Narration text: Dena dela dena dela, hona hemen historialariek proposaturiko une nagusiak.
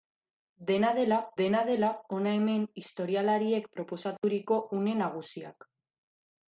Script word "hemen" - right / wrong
right